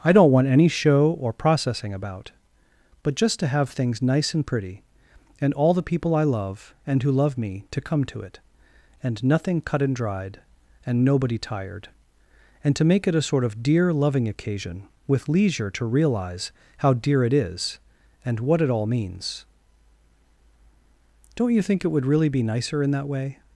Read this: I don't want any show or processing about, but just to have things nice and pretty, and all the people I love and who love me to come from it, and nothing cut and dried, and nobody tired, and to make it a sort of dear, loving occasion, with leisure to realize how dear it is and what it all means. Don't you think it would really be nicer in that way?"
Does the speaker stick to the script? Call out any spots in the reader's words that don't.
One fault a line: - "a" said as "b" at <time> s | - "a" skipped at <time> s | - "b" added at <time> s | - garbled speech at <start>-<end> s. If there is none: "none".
- "from" said as "to" at 8.1 s